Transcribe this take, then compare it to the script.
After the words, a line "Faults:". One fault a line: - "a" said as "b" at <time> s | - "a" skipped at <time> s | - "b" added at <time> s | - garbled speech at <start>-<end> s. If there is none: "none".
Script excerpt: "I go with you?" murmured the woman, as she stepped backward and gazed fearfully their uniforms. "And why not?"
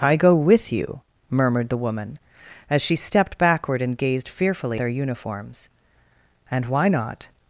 "I go with you?" murmured the woman, as she stepped backward and gazed fearfully their uniforms. "And why not?"
Faults:
none